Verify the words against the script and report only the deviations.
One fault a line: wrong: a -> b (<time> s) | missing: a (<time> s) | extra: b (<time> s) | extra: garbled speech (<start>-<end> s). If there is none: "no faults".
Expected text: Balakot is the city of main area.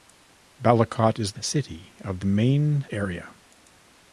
no faults